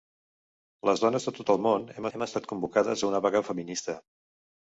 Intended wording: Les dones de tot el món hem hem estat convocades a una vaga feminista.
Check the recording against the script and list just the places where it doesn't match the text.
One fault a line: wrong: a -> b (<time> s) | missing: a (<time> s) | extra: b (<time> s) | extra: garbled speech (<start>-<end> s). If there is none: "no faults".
no faults